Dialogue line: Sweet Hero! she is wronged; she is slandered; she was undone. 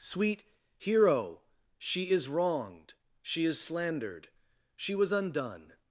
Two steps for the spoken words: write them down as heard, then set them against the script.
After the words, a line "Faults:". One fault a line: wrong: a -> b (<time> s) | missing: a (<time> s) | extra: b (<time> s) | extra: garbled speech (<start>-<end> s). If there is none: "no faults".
Sweet Hero! she is wronged; she is slandered; she was undone.
Faults:
no faults